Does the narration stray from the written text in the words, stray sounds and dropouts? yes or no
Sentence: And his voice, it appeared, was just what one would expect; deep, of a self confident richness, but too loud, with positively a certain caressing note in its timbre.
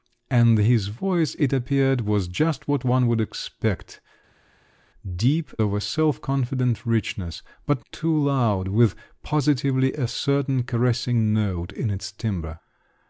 no